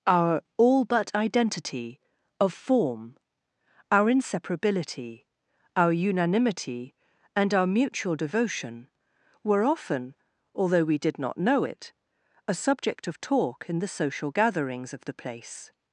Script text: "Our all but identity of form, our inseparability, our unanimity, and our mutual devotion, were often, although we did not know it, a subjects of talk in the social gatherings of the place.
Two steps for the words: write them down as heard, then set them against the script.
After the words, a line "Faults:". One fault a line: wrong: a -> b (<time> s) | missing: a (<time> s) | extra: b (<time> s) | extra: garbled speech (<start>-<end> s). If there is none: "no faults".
"Our all but identity of form, our inseparability, our unanimity, and our mutual devotion, were often, although we did not know it, a subject of talk in the social gatherings of the place.
Faults:
wrong: subjects -> subject (12.5 s)